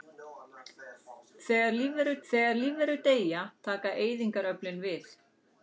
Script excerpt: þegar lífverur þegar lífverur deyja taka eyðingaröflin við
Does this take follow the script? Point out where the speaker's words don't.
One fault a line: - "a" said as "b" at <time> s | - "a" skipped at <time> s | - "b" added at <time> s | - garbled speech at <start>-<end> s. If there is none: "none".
none